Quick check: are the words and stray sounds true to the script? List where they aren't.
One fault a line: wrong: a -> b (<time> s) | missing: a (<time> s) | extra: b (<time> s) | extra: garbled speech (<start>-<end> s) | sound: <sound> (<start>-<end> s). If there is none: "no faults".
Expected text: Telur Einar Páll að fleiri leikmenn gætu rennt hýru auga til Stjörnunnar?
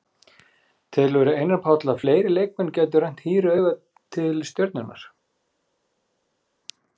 no faults